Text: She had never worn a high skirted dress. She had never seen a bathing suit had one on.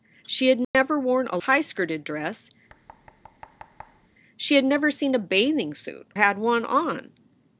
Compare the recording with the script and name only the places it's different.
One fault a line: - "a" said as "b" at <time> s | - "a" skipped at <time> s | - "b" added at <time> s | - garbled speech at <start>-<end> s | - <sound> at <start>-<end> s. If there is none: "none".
- dropout at 0.6-0.7 s
- thud at 2.7-4.1 s